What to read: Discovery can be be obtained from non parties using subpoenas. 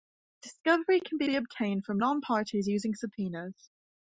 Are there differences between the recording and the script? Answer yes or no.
no